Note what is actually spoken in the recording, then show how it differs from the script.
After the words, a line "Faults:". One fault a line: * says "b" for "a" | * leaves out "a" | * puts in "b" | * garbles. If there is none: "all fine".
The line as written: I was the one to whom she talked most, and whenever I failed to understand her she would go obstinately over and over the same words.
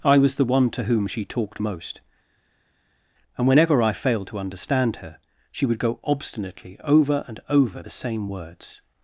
I was the one to whom she talked most, and whenever I failed to understand her she would go obstinately over and over the same words.
Faults:
all fine